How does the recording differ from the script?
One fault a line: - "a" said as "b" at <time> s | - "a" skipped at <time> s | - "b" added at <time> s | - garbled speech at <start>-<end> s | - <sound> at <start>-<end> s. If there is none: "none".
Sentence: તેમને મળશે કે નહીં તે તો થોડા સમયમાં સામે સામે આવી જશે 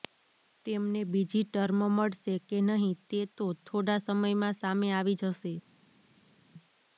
- "બીજી ટર્મ" added at 1.1 s
- "સામે" skipped at 4.9 s